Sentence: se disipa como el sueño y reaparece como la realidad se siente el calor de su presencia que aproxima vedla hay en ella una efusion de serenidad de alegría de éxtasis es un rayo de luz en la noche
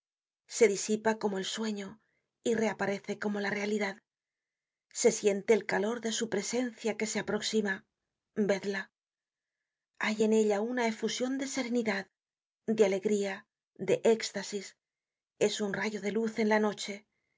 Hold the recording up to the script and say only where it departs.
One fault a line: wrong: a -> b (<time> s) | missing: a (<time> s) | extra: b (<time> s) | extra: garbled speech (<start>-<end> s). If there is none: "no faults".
extra: se (7.1 s)